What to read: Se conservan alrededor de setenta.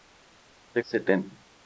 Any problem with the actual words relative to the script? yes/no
yes